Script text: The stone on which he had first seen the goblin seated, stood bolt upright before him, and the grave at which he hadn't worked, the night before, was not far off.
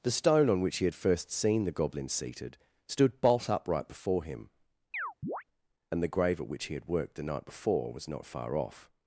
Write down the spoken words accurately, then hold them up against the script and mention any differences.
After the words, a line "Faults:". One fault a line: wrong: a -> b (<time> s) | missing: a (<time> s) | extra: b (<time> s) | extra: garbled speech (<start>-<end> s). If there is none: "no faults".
The stone on which he had first seen the goblin seated, stood bolt upright before him, and the grave at which he had worked, the night before, was not far off.
Faults:
wrong: hadn't -> had (6.7 s)